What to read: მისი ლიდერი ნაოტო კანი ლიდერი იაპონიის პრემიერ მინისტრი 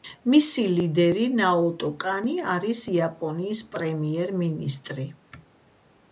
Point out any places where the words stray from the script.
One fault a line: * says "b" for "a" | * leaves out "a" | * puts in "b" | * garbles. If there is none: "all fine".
* says "არის" for "ლიდერი"